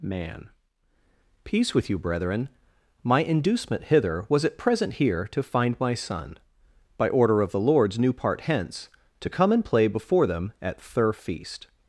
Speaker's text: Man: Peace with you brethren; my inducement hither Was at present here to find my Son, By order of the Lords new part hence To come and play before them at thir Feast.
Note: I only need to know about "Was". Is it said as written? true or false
true